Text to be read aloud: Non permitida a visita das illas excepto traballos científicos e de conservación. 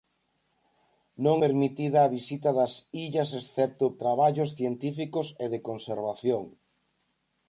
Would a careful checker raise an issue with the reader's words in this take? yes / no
no